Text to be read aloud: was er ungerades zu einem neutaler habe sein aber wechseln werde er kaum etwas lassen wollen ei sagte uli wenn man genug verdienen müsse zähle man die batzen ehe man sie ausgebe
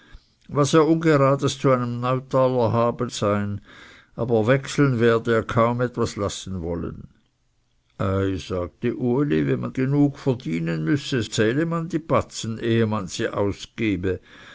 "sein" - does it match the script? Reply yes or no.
yes